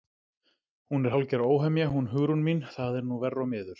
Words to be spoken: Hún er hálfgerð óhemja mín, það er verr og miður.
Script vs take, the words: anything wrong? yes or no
yes